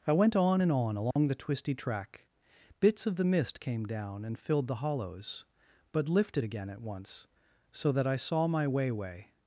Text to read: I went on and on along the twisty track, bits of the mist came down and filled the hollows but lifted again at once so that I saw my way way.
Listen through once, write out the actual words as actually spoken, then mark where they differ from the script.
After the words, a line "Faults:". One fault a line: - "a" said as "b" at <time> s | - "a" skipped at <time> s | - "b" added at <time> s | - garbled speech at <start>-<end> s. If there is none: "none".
I went on and on along the twisty track, bits of the mist came down and filled the hollows but lifted again at once so that I saw my way way.
Faults:
none